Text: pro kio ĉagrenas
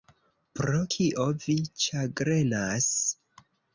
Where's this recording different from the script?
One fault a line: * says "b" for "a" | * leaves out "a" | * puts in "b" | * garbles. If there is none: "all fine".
* puts in "vi"